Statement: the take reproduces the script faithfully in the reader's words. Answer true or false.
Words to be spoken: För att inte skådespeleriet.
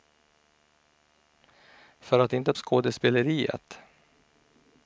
true